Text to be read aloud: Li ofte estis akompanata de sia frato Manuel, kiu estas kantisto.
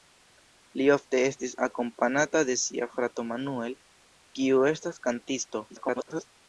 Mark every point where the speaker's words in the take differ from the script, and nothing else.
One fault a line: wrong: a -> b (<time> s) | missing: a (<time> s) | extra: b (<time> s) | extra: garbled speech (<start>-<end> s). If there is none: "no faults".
extra: garbled speech (5.7-6.3 s)